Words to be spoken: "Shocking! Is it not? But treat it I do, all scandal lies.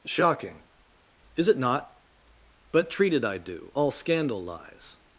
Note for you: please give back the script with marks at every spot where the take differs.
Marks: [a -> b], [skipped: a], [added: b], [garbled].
"Shocking! Is it not? But treat it I do, all scandal lies.